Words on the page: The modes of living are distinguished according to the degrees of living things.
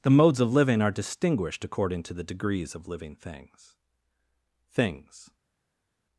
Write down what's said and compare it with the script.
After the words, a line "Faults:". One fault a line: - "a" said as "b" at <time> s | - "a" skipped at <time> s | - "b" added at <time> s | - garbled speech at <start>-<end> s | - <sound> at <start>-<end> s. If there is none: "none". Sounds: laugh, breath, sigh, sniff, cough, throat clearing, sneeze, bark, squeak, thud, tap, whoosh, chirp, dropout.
The modes of living are distinguished according to the degrees of living things things.
Faults:
- "things" added at 4.7 s